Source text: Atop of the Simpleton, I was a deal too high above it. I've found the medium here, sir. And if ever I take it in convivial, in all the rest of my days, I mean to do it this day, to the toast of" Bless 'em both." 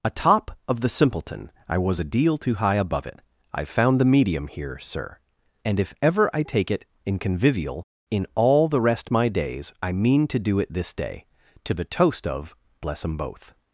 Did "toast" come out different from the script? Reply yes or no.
no